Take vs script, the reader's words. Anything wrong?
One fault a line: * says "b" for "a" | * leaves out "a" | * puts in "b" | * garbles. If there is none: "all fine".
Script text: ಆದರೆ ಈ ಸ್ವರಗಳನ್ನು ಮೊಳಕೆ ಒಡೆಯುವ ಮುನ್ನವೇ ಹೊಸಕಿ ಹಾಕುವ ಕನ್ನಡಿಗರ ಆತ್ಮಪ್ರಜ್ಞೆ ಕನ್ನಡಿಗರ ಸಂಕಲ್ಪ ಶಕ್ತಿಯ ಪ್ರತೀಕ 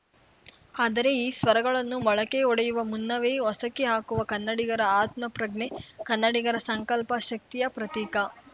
all fine